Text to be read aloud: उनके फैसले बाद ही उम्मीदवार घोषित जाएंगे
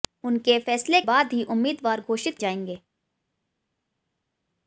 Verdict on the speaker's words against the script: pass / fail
pass